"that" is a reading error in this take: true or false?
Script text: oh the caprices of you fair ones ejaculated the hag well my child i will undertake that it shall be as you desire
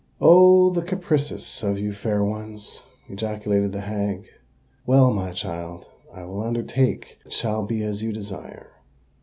true